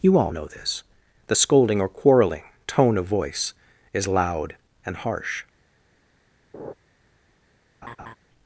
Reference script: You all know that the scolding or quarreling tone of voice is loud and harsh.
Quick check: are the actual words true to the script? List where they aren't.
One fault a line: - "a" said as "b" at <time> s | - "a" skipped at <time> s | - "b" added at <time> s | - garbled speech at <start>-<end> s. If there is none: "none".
- "that" said as "this" at 0.5 s